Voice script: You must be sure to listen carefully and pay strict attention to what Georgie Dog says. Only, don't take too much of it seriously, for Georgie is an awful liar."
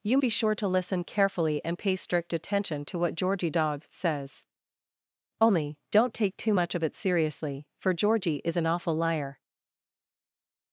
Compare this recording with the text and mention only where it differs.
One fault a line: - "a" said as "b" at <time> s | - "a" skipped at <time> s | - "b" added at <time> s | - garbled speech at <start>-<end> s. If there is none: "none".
- "must" skipped at 0.2 s